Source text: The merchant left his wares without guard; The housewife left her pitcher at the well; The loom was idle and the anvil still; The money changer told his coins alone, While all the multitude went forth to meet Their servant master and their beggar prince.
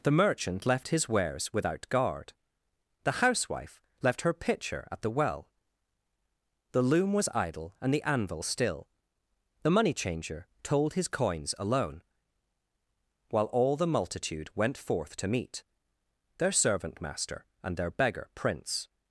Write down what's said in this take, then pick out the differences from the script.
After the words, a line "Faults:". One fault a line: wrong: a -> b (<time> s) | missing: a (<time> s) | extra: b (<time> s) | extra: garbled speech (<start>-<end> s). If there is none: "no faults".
The merchant left his wares without guard; The housewife left her pitcher at the well; The loom was idle and the anvil still; The money changer told his coins alone, While all the multitude went forth to meet Their servant master and their beggar prince.
Faults:
no faults